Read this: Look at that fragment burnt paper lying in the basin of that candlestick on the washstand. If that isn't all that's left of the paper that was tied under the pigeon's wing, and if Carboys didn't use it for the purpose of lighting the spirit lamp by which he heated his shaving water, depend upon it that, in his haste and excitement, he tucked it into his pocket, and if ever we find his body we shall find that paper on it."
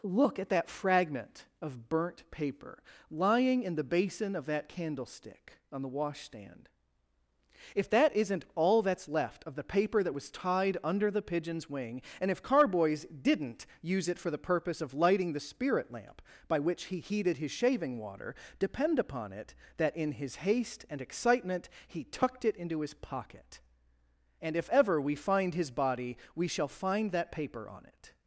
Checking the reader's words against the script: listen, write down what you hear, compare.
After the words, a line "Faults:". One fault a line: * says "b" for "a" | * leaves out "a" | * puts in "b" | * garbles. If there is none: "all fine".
Look at that fragment of burnt paper lying in the basin of that candlestick on the washstand. If that isn't all that's left of the paper that was tied under the pigeon's wing, and if Carboys didn't use it for the purpose of lighting the spirit lamp by which he heated his shaving water, depend upon it that, in his haste and excitement, he tucked it into his pocket, and if ever we find his body we shall find that paper on it."
Faults:
* puts in "of"